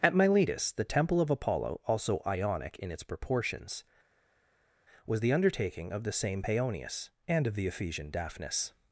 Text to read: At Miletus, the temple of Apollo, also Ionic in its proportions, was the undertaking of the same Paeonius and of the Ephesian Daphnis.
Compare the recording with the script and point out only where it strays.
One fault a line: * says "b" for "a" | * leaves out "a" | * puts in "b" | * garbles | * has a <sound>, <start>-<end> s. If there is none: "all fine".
all fine